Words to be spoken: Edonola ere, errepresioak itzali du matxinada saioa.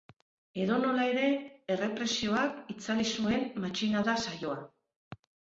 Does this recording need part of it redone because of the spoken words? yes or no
yes